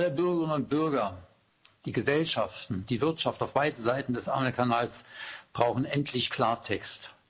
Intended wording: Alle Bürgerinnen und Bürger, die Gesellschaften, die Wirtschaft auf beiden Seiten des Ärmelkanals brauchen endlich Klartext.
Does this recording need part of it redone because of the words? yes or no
no